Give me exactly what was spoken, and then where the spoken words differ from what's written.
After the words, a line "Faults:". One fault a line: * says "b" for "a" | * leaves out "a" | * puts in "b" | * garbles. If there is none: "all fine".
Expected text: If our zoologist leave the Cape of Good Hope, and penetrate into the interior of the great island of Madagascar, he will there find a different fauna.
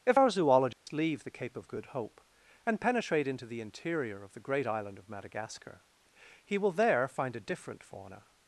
If our zoologist leave the Cape of Good Hope, and penetrate into the interior of the great island of Madagascar, he will there find a different fauna.
Faults:
all fine